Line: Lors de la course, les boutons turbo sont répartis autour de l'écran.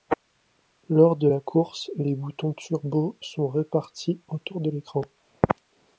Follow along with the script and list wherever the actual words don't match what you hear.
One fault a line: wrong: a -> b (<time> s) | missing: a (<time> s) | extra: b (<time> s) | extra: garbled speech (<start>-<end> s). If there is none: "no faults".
no faults